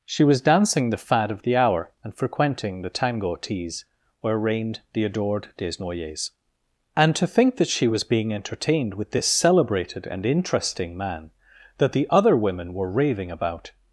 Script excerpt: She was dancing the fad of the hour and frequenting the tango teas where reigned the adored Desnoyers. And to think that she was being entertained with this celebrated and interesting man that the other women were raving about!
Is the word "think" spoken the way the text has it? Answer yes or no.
yes